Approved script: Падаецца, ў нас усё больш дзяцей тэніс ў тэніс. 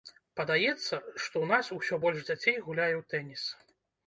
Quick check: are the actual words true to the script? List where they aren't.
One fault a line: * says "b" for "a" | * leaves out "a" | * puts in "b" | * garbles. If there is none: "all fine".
* puts in "што"
* says "гуляе" for "тэніс"